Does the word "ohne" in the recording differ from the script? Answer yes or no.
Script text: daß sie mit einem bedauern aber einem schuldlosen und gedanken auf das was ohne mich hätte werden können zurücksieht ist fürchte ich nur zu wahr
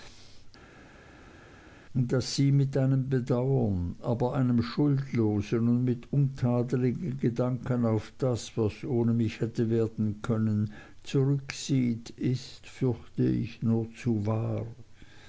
no